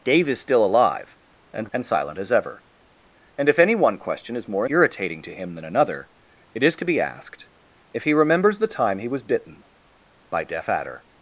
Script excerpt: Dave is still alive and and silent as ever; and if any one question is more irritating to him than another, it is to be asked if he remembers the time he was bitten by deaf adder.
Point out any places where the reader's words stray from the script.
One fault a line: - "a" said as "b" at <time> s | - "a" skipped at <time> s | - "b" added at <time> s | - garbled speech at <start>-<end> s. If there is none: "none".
none